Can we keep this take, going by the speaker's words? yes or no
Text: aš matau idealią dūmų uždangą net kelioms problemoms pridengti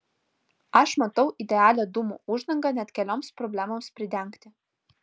yes